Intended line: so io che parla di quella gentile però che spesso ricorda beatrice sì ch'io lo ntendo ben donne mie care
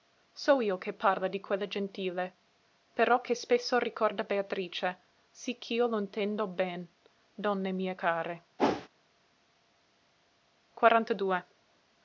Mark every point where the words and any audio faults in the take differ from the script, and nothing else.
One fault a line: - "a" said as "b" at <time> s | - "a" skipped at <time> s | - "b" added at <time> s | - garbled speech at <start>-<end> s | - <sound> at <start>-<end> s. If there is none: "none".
- whoosh at 8.6-8.9 s